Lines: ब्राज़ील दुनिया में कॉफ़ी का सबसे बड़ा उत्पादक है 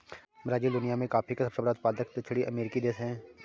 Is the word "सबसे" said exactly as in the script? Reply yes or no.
yes